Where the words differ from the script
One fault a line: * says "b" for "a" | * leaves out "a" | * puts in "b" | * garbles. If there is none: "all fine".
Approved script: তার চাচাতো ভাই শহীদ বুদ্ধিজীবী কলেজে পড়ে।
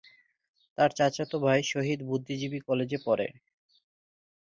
all fine